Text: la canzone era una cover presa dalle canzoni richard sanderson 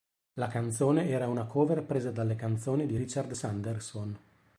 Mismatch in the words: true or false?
true